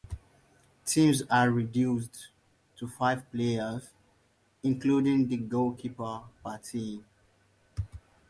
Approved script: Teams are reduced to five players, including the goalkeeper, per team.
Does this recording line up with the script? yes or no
yes